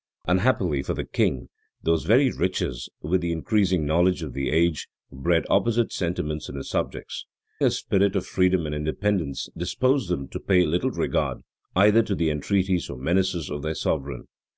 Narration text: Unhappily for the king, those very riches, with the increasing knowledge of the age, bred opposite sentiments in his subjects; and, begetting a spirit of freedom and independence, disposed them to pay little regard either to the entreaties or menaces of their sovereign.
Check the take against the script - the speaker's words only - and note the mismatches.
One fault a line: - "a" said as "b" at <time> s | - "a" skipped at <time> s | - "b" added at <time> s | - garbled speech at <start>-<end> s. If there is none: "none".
- "and begetting" skipped at 7.3 s